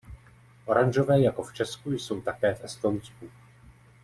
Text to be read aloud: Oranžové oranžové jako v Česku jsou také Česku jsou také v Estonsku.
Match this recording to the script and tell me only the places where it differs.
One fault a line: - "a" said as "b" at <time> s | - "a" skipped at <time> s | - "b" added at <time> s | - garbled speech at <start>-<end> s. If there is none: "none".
- "oranžové" skipped at 1.2 s
- "Česku jsou také" skipped at 2.5 s